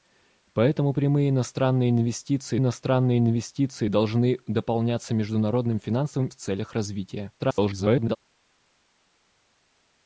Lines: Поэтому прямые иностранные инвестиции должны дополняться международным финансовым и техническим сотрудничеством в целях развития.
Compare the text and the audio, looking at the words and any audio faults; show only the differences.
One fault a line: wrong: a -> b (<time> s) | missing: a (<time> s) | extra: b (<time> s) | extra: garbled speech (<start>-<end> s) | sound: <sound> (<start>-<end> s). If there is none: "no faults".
extra: иностранные инвестиции (2.6 s)
missing: и техническим сотрудничеством (6.3 s)
extra: garbled speech (7.4-8.2 s)